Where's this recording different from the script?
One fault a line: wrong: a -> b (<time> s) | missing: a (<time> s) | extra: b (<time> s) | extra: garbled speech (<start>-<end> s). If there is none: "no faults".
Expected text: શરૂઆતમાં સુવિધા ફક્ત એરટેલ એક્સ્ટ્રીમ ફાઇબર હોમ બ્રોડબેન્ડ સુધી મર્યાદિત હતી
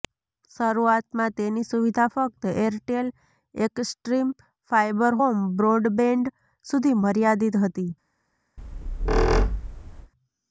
extra: તેની (1.4 s)